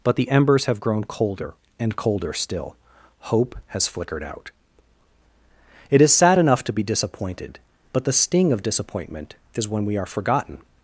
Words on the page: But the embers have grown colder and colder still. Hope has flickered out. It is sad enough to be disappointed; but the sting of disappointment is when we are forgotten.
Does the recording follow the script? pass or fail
pass